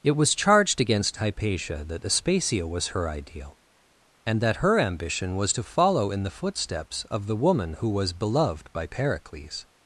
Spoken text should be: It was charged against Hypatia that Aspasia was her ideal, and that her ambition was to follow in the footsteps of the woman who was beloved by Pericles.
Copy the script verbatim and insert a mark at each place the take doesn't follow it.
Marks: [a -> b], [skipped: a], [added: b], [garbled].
It was charged against Hypatia that Aspasia was her ideal, and that her ambition was to follow in the footsteps of the woman who was beloved by Pericles.